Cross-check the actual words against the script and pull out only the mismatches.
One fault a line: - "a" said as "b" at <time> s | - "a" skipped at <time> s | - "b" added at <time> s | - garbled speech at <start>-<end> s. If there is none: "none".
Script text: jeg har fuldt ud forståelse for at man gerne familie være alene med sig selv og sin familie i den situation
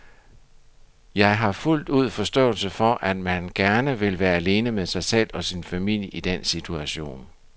- "familie" said as "vil" at 4.0 s